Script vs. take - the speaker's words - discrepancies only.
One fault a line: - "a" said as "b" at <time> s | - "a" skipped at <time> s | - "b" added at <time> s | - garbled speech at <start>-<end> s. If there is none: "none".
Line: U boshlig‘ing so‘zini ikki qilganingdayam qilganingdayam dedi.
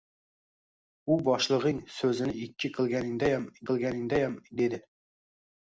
none